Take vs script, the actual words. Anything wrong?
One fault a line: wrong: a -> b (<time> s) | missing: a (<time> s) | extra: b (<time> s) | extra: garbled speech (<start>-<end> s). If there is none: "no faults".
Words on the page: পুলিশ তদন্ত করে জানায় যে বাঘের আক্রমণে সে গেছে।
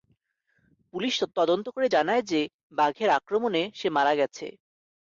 extra: মারা (3.9 s)